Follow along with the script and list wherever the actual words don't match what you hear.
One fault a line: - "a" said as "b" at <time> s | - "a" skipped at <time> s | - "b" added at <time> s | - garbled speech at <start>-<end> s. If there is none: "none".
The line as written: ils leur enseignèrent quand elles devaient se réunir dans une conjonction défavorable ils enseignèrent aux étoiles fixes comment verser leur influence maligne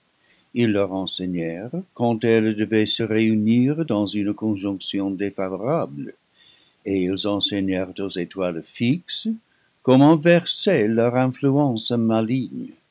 - "et" added at 6.8 s